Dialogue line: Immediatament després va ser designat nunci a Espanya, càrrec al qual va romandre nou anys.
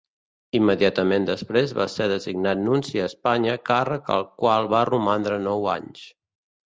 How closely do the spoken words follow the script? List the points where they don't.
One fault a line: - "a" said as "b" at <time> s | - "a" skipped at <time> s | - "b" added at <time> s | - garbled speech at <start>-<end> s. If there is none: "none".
none